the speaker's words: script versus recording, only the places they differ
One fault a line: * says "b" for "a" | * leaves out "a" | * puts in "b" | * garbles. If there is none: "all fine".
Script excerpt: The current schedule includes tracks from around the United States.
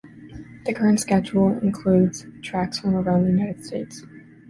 all fine